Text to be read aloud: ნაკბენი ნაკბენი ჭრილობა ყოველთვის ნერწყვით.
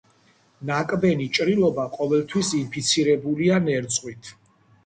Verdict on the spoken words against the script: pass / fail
fail